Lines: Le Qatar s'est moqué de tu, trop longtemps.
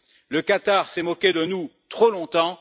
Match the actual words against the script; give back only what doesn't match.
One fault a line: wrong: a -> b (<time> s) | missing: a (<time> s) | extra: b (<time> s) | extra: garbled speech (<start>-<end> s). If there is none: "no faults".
wrong: tu -> nous (1.4 s)